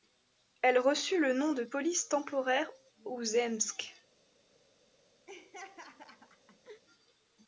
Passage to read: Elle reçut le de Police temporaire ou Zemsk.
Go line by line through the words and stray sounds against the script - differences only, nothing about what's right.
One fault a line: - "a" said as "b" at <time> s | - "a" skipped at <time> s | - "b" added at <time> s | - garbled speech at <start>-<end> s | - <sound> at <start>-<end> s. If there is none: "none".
- "nom" added at 1.3 s
- laugh at 5.3-6.8 s